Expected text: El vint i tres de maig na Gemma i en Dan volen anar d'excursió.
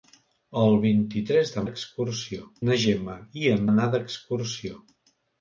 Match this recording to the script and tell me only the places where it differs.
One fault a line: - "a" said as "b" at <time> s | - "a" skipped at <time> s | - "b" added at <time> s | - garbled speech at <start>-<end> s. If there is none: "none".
- "maig" said as "d'excursió" at 1.7 s
- "Dan volen" skipped at 3.7 s